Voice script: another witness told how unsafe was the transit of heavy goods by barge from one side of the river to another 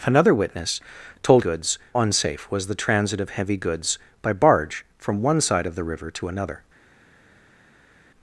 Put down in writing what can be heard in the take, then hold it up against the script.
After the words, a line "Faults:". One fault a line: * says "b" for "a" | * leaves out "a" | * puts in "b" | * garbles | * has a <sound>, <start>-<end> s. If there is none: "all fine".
another witness told goods unsafe was the transit of heavy goods by barge from one side of the river to another
Faults:
* says "goods" for "how"